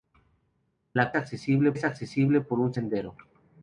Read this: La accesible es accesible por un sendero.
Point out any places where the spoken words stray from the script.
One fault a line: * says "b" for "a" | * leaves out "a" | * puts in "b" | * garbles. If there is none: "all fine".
all fine